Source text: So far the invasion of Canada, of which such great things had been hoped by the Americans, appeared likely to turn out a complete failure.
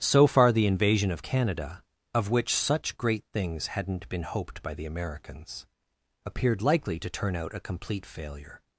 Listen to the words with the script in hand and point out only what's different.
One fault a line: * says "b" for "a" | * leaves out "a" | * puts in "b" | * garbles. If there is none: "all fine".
* says "hadn't" for "had"